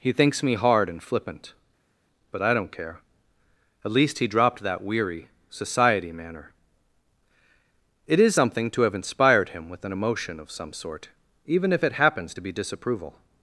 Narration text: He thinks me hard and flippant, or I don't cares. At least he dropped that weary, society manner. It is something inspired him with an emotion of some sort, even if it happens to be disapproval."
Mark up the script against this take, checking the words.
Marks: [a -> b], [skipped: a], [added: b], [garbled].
He thinks me hard and flippant, [or -> but] I don't [cares. -> care] At least he dropped that weary, society manner. It is something [added: to have] inspired him with an emotion of some sort, even if it happens to be disapproval."